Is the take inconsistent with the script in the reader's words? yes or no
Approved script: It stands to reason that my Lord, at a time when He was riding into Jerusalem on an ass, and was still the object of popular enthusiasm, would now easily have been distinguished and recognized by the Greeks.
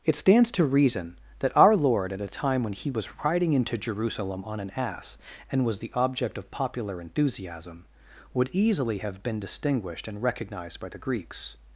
yes